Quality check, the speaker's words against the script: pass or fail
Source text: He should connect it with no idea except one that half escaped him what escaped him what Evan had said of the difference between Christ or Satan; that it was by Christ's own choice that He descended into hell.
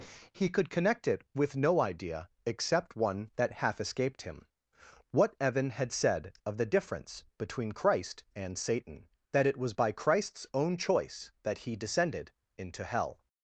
fail